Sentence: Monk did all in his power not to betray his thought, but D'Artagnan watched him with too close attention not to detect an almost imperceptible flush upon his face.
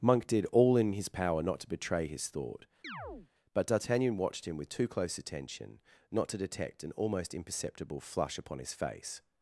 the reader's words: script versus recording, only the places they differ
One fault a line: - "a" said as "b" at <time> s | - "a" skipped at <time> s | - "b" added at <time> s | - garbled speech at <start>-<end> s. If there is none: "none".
none